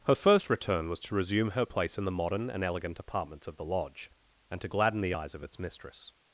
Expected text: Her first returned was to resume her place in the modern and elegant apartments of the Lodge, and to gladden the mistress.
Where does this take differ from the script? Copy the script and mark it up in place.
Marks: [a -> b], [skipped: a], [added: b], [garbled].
Her first [returned -> return] was to resume her place in the modern and elegant apartments of the Lodge, and to gladden the [added: eyes of its] mistress.